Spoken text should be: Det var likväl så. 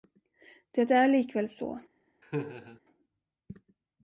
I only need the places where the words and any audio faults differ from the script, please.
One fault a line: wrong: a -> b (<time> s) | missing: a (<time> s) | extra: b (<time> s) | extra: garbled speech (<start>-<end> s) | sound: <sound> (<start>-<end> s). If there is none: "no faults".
wrong: var -> är (0.9 s)
sound: laugh (2.2-2.8 s)